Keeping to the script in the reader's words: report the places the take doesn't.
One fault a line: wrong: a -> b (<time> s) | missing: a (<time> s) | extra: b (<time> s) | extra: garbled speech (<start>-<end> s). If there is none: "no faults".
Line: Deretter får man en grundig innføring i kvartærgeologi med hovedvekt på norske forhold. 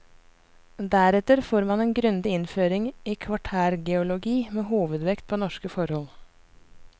no faults